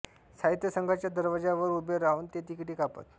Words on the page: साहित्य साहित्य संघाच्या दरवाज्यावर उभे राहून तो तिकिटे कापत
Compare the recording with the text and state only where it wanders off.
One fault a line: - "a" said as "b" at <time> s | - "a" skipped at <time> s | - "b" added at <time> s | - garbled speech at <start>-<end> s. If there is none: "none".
- "साहित्य" skipped at 0.7 s
- "तो" said as "ते" at 2.3 s